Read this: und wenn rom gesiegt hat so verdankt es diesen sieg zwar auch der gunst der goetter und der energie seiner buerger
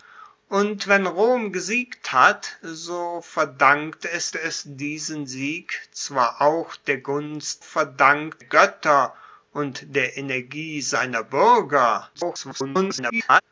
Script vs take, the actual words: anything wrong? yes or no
yes